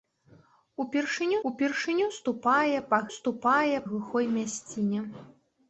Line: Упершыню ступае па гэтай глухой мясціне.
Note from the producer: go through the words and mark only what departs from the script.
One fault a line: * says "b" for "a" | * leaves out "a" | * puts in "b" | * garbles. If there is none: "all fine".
* puts in "упершыню"
* says "ступае" for "гэтай"